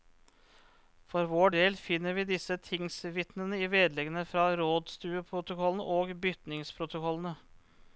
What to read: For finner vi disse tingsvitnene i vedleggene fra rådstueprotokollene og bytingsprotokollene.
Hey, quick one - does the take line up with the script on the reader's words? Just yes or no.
no